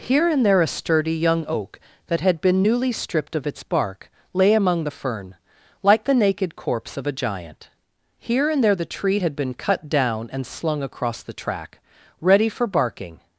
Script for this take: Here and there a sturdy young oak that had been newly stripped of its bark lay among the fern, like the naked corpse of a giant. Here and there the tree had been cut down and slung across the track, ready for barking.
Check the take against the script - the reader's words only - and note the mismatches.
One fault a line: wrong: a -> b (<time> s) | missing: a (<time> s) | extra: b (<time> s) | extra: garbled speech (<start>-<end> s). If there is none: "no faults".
no faults